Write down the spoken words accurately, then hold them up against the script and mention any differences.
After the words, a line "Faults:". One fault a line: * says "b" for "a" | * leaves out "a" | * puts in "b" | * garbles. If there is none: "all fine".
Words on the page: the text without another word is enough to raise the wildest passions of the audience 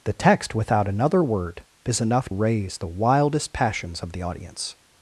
the text without another word is enough raise the wildest passions of the audience
Faults:
* leaves out "to"